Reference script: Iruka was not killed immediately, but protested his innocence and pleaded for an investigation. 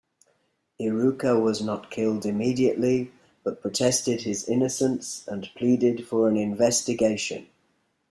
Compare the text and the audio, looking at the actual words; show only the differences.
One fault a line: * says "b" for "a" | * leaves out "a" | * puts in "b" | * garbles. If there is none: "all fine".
all fine